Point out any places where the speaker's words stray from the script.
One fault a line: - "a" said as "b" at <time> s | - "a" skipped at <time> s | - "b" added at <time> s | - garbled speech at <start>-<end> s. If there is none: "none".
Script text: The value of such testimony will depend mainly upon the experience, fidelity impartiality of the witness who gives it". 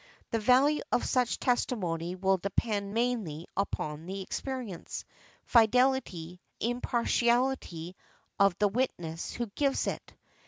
none